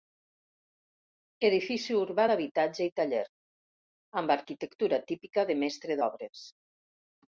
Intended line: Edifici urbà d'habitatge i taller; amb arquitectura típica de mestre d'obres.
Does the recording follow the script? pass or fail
pass